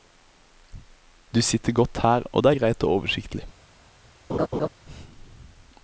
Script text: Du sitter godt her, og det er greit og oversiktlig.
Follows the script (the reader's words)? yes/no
yes